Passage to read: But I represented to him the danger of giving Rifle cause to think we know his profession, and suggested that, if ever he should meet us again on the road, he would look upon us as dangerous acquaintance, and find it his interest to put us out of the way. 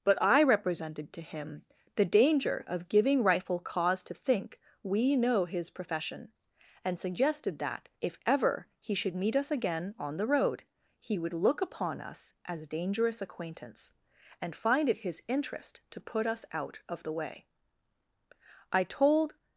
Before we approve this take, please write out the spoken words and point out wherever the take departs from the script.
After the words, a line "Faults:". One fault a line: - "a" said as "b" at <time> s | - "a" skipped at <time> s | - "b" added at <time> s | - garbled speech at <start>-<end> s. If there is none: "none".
But I represented to him the danger of giving Rifle cause to think we know his profession, and suggested that, if ever he should meet us again on the road, he would look upon us as dangerous acquaintance, and find it his interest to put us out of the way. I told
Faults:
- "I told" added at 18.7 s